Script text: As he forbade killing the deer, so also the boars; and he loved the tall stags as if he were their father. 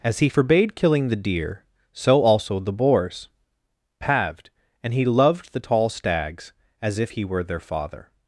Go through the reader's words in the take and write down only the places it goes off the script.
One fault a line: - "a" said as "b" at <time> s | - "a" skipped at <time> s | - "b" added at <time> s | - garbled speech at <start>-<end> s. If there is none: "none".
- "paved" added at 4.0 s